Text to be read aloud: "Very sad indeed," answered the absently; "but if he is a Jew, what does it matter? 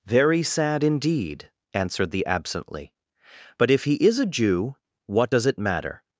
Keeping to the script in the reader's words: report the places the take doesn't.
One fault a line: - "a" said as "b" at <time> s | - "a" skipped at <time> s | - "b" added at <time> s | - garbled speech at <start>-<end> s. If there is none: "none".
none